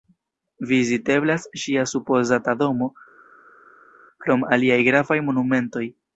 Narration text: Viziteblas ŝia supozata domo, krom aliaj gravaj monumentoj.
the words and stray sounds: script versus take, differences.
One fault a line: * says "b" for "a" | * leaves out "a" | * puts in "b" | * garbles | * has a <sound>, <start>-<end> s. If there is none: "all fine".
all fine